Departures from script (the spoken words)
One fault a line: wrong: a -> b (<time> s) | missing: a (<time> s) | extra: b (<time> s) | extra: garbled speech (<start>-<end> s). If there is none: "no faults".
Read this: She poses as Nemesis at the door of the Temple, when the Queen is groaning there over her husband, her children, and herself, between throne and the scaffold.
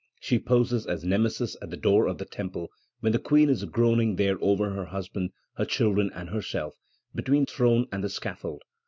no faults